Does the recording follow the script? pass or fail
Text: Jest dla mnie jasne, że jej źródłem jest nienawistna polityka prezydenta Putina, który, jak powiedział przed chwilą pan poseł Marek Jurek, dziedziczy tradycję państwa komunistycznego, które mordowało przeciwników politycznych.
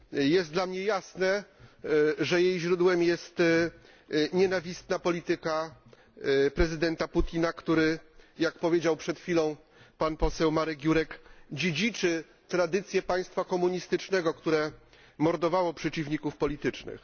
pass